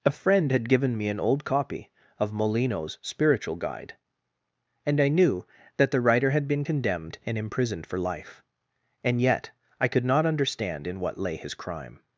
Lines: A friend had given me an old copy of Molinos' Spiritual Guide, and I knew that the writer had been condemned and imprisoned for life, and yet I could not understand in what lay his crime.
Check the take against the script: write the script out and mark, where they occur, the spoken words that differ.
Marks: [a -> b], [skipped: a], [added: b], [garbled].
A friend had given me an old copy of Molinos' Spiritual Guide, and I knew that the writer had been condemned and imprisoned for life, and yet I could not understand in what lay his crime.